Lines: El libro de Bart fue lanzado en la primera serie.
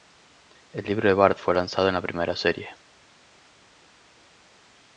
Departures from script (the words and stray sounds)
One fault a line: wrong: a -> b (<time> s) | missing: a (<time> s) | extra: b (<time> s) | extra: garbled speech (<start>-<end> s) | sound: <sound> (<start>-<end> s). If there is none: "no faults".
no faults